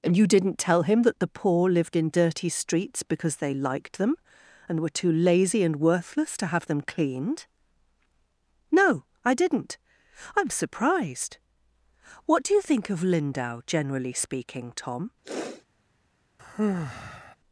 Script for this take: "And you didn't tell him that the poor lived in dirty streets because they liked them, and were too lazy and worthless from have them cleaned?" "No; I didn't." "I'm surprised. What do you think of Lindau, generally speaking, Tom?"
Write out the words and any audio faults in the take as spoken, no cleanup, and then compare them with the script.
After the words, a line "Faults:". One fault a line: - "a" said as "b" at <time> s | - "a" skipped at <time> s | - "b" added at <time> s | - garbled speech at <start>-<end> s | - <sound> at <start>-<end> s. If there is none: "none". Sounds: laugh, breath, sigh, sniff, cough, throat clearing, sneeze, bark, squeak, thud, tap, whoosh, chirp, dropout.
"And you didn't tell him that the poor lived in dirty streets because they liked them, and were too lazy and worthless to have them cleaned?" "No; I didn't." "I'm surprised. What do you think of Lindau, generally speaking, Tom?"
Faults:
- "from" said as "to" at 6.4 s
- sniff at 15.2-15.7 s
- sigh at 16.4-17.4 s